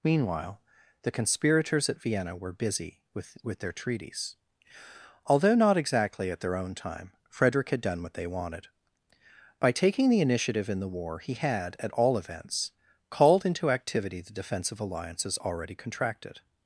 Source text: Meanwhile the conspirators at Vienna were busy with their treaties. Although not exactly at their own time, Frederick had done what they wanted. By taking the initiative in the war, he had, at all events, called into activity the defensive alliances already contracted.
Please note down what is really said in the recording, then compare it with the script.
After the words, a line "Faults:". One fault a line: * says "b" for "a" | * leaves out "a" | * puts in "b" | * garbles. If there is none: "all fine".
Meanwhile the conspirators at Vienna were busy with with their treaties. Although not exactly at their own time, Frederick had done what they wanted. By taking the initiative in the war, he had, at all events, called into activity the defensive alliances already contracted.
Faults:
* puts in "with"